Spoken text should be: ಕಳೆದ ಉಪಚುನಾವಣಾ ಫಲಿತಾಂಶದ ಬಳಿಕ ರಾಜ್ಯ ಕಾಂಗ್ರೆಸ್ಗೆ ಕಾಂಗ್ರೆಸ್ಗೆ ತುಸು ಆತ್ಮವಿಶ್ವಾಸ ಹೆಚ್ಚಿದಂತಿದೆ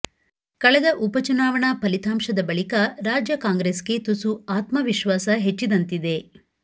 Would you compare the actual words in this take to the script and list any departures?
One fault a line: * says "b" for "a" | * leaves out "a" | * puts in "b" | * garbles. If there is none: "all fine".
* leaves out "ಕಾಂಗ್ರೆಸ್ಗೆ"